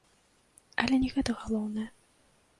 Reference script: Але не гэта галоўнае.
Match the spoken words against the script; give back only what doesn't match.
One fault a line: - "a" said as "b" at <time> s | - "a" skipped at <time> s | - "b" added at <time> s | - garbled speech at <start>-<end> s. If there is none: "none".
none